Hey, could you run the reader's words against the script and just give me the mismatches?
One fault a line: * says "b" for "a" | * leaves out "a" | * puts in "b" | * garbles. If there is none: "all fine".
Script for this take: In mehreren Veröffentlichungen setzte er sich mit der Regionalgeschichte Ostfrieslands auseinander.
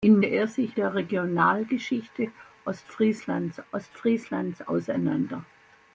* leaves out "mehreren Veröffentlichungen setzte"
* leaves out "mit"
* puts in "Ostfrieslands"